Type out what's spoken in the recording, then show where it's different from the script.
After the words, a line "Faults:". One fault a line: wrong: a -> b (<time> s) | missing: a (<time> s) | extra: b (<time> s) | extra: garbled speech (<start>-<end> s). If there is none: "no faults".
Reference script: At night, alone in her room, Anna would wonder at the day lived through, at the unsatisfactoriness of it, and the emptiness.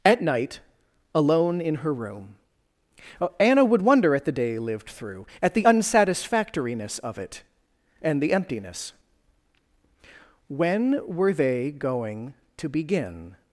At night, alone in her room, Anna would wonder at the day lived through, at the unsatisfactoriness of it, and the emptiness. When were they going to begin
Faults:
extra: When were they going to begin (10.5 s)